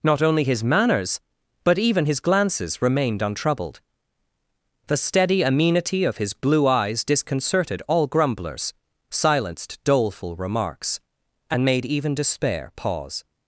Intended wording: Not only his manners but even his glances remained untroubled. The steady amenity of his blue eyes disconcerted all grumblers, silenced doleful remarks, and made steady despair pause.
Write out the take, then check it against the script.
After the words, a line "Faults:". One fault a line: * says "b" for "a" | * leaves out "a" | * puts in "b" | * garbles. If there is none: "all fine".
Not only his manners but even his glances remained untroubled. The steady amenity of his blue eyes disconcerted all grumblers, silenced doleful remarks, and made even despair pause.
Faults:
* says "even" for "steady"